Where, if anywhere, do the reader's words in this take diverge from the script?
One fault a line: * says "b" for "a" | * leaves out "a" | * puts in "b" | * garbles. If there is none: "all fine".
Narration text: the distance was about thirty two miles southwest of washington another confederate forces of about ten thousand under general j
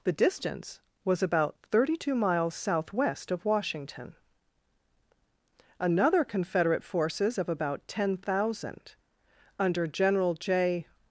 all fine